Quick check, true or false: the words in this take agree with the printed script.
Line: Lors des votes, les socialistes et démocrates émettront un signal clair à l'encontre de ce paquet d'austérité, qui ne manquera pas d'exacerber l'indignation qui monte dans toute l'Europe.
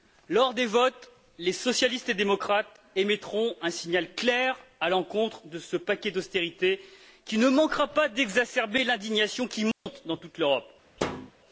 true